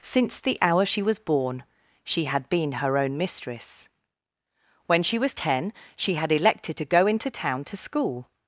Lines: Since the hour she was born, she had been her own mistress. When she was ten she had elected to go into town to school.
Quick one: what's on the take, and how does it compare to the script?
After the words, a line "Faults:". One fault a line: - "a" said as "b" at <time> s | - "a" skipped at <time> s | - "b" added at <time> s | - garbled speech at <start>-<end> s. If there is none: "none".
Since the hour she was born, she had been her own mistress. When she was ten she had elected to go into town to school.
Faults:
none